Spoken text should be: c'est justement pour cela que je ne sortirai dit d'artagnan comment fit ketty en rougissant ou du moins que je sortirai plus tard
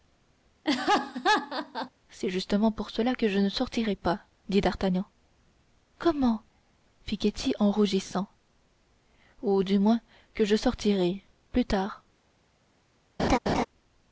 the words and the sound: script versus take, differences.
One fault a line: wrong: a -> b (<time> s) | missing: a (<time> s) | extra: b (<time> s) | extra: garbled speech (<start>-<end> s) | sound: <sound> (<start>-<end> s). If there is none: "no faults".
sound: laugh (0.6-1.9 s)
extra: pas (3.9 s)
sound: laugh (13.2-13.7 s)